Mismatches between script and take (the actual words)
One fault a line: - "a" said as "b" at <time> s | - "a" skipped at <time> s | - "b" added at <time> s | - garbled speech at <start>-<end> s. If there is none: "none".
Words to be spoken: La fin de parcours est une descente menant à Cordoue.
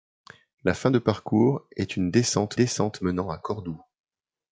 - "descente" added at 2.5 s